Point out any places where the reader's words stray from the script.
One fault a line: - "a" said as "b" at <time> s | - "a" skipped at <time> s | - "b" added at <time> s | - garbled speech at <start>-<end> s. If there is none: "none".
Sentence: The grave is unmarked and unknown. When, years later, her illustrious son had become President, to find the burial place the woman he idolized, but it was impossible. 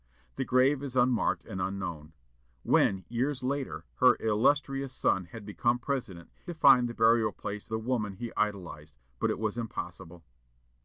none